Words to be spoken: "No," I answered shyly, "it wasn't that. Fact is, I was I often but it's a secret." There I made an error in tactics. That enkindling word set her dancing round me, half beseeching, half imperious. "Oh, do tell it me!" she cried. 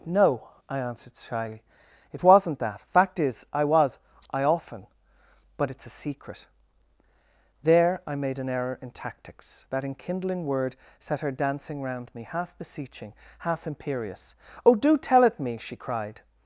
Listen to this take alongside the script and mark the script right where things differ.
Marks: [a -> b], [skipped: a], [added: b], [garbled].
"No," I answered shyly, "it wasn't that. Fact is, I was I often but it's a secret." There I made an error in tactics. That enkindling word set her dancing round me, half beseeching, half imperious. "Oh, do tell it me!" she cried.